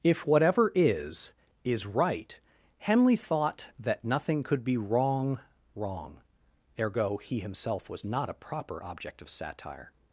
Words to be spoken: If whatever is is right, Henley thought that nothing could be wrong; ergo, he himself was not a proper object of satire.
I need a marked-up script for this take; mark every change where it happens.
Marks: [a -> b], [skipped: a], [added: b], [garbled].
If whatever is is right, Henley thought that nothing could be wrong; [added: wrong] ergo, he himself was not a proper object of satire.